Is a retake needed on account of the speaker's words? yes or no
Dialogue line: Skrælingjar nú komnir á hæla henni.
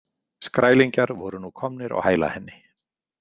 yes